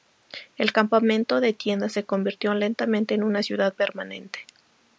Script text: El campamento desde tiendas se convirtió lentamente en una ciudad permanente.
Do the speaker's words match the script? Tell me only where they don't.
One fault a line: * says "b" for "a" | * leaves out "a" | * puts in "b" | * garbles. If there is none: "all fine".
* says "de" for "desde"